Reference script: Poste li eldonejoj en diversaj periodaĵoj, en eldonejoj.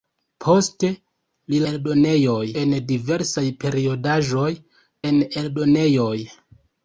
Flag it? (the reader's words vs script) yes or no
no